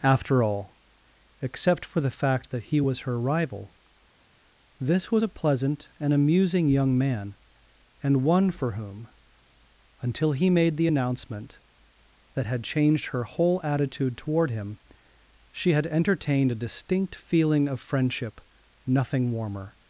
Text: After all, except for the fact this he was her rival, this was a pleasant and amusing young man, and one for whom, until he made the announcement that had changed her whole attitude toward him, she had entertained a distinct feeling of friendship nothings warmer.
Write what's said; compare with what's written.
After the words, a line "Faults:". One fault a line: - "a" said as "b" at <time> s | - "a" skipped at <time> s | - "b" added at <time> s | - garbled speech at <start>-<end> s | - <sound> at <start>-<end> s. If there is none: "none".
After all, except for the fact that he was her rival, this was a pleasant and amusing young man, and one for whom, until he made the announcement that had changed her whole attitude toward him, she had entertained a distinct feeling of friendship nothing warmer.
Faults:
- "this" said as "that" at 2.5 s
- "nothings" said as "nothing" at 18.9 s